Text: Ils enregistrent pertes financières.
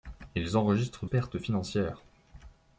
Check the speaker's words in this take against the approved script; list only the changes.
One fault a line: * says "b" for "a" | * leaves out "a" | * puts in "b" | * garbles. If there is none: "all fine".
all fine